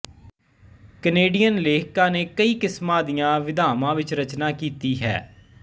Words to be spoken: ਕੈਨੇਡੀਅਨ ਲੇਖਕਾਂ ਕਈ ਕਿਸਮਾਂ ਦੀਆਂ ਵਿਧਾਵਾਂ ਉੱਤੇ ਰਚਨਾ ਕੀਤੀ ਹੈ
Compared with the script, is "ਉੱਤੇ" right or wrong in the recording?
wrong